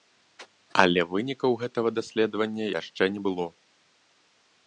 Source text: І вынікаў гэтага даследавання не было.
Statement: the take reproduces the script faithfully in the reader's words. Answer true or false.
false